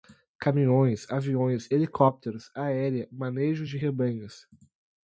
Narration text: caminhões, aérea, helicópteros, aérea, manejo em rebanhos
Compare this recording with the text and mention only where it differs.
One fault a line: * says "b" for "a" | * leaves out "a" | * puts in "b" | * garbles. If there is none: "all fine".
* says "aviões" for "aérea"
* says "de" for "em"